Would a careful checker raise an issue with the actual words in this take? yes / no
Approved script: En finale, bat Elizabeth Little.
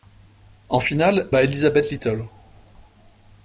no